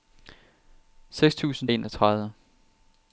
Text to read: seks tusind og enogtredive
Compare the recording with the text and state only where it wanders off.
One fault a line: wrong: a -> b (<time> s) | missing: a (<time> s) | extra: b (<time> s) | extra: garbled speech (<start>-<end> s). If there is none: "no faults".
no faults